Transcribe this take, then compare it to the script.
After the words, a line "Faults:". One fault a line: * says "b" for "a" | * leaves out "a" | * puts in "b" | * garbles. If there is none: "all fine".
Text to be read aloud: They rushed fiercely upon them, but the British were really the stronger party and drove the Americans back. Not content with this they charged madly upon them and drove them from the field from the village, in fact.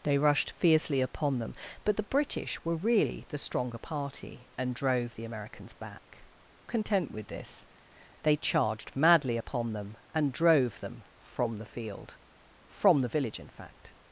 They rushed fiercely upon them, but the British were really the stronger party and drove the Americans back. Content with this they charged madly upon them and drove them from the field from the village, in fact.
Faults:
* leaves out "Not"